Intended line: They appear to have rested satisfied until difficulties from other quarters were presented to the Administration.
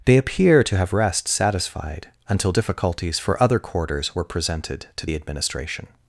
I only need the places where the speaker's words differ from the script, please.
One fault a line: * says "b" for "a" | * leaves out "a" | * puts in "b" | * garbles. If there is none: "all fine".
* says "rest" for "rested"
* says "for" for "from"